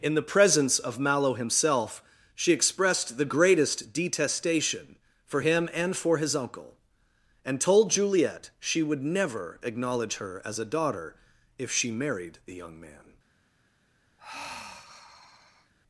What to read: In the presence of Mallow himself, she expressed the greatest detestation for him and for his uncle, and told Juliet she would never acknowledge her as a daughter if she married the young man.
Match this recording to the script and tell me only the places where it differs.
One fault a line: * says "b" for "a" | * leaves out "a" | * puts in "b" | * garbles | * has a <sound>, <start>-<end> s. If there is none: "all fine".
* has a sigh, 14.2-15.7 s